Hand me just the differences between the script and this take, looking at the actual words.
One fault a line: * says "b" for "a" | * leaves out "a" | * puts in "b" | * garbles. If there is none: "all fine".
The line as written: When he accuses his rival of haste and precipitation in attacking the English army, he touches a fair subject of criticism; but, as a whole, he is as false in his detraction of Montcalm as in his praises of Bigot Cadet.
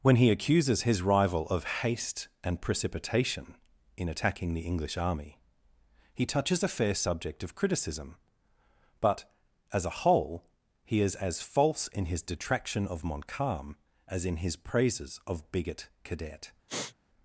all fine